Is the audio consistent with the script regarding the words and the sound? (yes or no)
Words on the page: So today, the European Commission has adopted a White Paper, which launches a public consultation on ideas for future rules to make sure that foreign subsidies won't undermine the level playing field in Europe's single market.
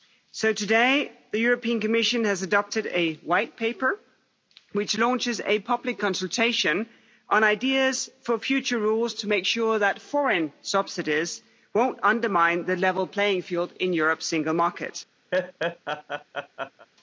no